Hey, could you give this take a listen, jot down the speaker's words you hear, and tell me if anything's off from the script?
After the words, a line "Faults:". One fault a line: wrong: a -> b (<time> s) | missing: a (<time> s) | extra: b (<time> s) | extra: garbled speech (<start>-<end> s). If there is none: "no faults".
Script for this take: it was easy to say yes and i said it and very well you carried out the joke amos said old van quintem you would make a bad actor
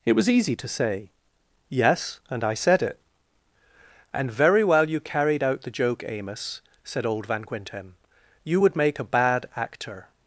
it was easy to say yes and i said it and very well you carried out the joke amos said old van quintem you would make a bad actor
Faults:
no faults